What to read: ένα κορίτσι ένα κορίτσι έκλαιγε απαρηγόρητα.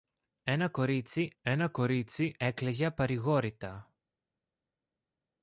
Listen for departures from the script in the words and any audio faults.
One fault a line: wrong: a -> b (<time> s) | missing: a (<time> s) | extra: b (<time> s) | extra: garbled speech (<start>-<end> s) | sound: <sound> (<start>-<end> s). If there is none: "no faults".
no faults